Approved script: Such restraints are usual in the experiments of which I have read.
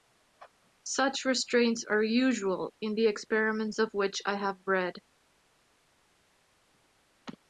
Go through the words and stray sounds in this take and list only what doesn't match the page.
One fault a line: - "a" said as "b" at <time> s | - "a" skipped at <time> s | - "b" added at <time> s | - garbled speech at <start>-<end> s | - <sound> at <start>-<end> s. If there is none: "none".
none